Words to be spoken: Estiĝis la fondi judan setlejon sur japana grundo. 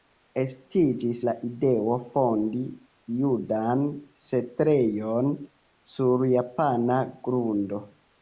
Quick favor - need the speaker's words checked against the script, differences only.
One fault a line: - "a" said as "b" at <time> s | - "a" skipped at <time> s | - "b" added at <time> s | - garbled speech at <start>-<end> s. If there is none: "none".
- "ideo" added at 1.5 s